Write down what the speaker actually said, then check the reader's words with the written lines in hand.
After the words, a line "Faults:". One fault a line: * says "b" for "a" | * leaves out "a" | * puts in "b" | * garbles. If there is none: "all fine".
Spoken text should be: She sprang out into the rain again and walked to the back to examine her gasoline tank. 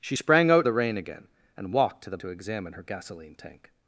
She sprang out the rain again and walked to the to examine her gasoline tank.
Faults:
* leaves out "into"
* leaves out "back"